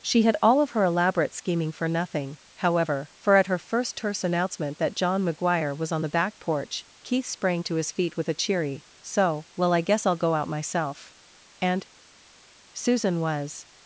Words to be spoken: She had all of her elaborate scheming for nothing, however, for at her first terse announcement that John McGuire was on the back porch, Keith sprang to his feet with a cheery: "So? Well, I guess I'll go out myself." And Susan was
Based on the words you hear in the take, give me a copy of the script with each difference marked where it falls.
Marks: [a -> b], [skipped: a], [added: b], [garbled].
She had all of her elaborate scheming for nothing, however, for at her first terse announcement that John McGuire was on the back porch, Keith sprang to his feet with a cheery: "So? Well, I guess I'll go out myself." And Susan was